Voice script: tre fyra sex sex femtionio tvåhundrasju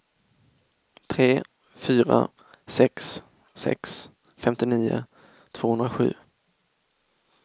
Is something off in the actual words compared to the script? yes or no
no